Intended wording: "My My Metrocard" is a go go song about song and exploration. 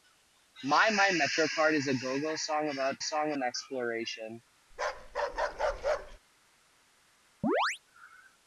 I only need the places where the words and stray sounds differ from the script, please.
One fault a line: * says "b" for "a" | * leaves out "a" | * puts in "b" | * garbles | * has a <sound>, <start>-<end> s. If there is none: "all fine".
* has a bark, 4.7-6.2 s
* has a chirp, 7.4-7.8 s